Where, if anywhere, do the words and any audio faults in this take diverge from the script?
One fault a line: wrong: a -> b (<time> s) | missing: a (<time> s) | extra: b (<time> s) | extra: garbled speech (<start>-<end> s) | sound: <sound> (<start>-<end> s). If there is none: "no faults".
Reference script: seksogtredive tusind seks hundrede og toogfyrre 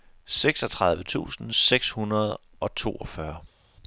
no faults